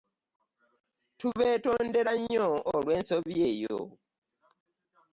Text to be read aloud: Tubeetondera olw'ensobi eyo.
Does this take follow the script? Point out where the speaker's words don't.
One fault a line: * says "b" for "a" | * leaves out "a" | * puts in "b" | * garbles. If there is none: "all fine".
* puts in "nnyo"